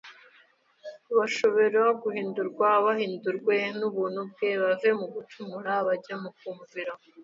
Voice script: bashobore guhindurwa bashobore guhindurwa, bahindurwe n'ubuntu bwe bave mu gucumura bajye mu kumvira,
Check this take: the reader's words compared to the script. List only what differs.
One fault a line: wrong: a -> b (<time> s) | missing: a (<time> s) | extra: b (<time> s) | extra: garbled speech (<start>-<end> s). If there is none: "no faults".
missing: bashobore guhindurwa (2.7 s)